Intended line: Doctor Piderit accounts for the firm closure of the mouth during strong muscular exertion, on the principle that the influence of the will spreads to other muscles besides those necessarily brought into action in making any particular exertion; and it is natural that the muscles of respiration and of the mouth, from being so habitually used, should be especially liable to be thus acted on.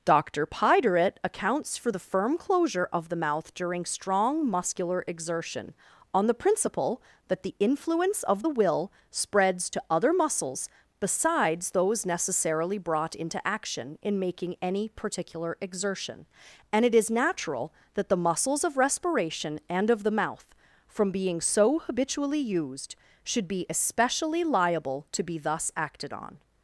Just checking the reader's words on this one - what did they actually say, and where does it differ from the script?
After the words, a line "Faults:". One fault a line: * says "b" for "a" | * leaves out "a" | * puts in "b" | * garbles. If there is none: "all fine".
Doctor Piderit accounts for the firm closure of the mouth during strong muscular exertion, on the principle that the influence of the will spreads to other muscles besides those necessarily brought into action in making any particular exertion; and it is natural that the muscles of respiration and of the mouth, from being so habitually used, should be especially liable to be thus acted on.
Faults:
all fine